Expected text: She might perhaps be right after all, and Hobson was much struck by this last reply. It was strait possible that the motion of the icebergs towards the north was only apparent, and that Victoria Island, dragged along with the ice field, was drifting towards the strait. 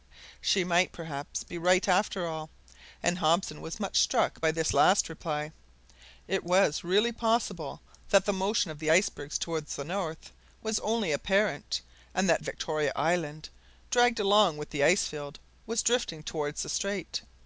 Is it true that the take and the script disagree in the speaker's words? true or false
true